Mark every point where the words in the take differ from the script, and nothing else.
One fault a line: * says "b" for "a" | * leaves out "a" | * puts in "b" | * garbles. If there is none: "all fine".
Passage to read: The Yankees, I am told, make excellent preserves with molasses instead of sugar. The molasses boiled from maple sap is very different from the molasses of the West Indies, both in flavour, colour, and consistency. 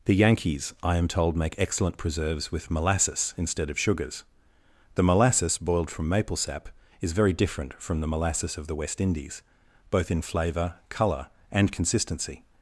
* says "sugars" for "sugar"